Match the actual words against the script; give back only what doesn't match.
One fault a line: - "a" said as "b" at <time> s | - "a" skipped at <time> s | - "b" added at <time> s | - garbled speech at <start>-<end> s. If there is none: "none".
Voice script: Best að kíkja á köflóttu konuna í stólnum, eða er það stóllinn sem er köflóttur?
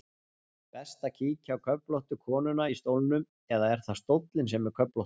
none